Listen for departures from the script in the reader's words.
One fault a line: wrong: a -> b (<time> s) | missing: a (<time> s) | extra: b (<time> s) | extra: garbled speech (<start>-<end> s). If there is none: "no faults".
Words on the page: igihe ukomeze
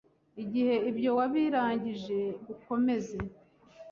extra: ibyo wabirangije (0.9 s)